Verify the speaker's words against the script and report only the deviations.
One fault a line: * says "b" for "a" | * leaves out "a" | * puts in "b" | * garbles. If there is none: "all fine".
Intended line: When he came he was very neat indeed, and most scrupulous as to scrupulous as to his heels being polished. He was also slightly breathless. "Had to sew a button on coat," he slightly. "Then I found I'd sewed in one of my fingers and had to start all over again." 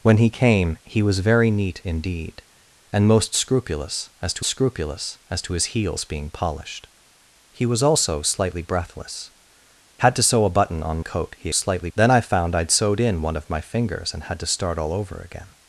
all fine